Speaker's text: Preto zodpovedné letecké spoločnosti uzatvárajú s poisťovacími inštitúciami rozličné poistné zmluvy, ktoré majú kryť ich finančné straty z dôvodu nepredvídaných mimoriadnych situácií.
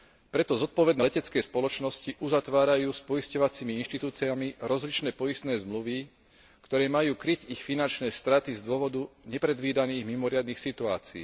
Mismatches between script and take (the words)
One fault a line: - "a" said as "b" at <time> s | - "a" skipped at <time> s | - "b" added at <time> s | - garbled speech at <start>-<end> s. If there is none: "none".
none